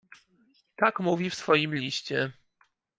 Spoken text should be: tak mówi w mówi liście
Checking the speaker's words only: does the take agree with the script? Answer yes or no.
no